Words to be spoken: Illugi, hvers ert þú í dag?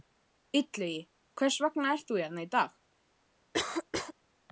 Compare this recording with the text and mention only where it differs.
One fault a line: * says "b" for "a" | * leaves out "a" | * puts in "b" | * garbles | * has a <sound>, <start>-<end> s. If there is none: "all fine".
* puts in "vegna"
* puts in "hérna"
* has a cough, 3.5-4.1 s